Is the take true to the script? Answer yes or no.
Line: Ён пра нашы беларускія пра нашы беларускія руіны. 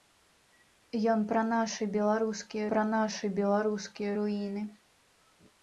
yes